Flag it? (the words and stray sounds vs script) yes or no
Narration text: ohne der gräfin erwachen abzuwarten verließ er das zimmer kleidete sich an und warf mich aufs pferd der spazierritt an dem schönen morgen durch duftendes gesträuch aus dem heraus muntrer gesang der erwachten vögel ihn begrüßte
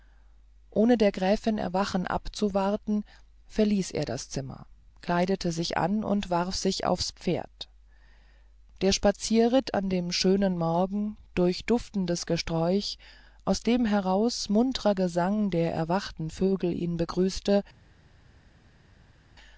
yes